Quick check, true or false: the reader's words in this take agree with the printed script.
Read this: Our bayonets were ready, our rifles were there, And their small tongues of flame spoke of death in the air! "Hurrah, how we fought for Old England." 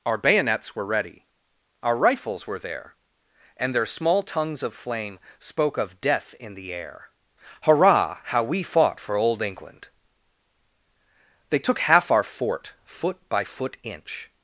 false